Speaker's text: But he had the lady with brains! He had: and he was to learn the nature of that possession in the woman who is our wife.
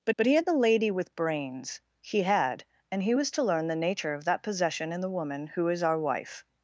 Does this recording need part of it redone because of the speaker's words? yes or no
yes